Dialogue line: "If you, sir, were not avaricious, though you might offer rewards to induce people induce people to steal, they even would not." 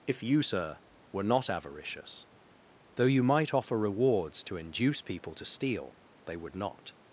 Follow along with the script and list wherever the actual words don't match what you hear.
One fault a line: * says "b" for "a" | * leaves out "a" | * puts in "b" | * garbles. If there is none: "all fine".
* leaves out "induce people"
* leaves out "even"